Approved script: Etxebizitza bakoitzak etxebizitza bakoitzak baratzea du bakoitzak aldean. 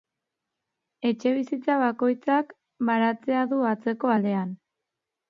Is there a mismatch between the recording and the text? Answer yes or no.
yes